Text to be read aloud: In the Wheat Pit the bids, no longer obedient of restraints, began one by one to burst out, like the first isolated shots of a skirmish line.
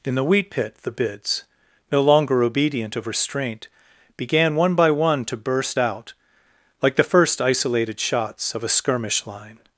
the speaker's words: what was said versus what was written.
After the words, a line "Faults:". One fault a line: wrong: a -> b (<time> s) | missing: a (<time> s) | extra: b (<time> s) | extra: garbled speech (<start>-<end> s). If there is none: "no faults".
In the Wheat Pit the bids, no longer obedient of restraint, began one by one to burst out, like the first isolated shots of a skirmish line.
Faults:
wrong: restraints -> restraint (3.1 s)